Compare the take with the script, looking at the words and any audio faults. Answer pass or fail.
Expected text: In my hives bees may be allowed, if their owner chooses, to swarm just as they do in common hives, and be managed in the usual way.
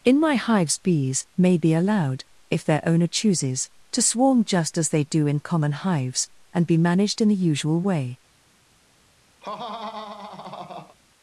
fail